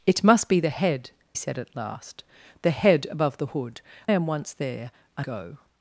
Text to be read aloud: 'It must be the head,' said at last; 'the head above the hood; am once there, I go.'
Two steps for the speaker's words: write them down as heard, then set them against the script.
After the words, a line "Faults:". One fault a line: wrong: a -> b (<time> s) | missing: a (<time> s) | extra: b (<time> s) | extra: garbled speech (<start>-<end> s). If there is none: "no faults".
'It must be the head,' said at last; 'the head above the hood; am once there, I go.'
Faults:
no faults